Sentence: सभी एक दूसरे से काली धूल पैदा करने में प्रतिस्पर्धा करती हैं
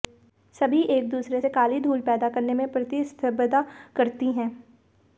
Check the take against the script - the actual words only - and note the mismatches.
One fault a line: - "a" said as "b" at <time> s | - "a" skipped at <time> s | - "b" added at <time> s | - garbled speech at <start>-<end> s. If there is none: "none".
none